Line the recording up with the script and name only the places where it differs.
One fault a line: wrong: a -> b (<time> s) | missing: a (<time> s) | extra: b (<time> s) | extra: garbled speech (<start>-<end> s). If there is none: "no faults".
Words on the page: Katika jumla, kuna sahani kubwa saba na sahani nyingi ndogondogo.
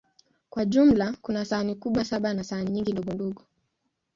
wrong: Katika -> Kwa (0.5 s)